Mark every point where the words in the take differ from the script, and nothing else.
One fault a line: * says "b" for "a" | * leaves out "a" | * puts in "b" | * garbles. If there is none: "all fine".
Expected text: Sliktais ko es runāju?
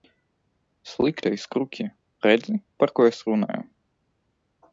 * puts in "kruķi redzi par"